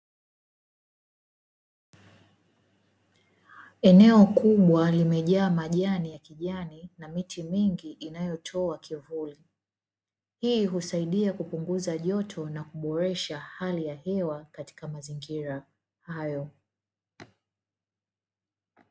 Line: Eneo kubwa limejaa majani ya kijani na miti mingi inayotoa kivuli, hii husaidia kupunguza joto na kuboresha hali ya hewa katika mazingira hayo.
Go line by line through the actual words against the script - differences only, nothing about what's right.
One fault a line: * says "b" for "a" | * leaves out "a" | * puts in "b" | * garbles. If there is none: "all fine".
all fine